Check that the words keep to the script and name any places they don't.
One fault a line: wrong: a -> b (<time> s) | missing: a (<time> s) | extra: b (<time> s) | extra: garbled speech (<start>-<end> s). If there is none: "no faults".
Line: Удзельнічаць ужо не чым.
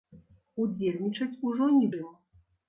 no faults